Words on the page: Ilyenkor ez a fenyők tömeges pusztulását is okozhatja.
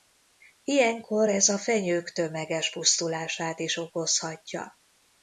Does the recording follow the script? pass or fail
pass